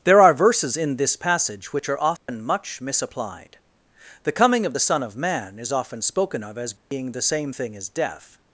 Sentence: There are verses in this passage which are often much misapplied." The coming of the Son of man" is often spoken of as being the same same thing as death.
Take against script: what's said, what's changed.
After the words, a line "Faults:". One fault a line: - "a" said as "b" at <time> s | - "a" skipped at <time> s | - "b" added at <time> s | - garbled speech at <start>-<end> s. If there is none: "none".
There are verses in this passage which are often much misapplied." The coming of the Son of man" is often spoken of as being the same thing as death.
Faults:
- "same" skipped at 7.5 s